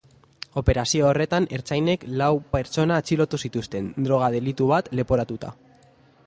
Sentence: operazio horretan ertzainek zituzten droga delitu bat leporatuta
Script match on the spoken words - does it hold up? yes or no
no